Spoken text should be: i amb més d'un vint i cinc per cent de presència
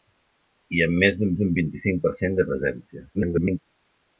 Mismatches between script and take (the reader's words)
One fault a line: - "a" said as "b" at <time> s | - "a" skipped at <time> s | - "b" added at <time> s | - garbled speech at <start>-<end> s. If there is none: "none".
- "d'un" added at 1.4 s
- garbled speech at 3.1-3.6 s